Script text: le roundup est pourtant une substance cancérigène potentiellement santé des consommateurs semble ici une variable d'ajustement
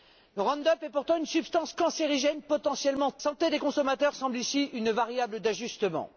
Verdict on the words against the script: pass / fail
pass